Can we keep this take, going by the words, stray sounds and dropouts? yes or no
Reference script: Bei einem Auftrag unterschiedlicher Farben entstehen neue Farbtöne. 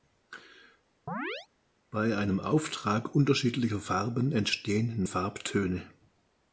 no